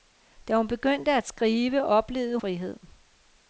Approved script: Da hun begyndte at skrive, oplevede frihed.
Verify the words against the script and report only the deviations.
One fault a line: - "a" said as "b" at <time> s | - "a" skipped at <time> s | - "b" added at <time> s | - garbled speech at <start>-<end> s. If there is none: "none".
none